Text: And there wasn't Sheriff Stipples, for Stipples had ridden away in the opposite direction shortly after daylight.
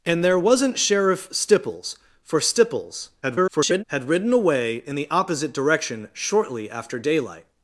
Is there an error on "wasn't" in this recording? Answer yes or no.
no